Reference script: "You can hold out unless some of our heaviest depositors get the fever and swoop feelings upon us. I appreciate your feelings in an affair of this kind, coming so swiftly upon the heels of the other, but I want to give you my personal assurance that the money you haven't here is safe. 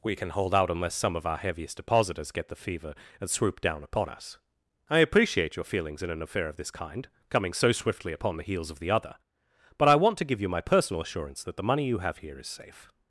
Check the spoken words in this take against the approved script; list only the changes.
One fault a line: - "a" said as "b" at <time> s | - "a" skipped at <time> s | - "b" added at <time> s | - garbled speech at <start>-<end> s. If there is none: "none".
- "You" said as "We" at 0.0 s
- "feelings" said as "down" at 3.6 s
- "haven't" said as "have" at 12.0 s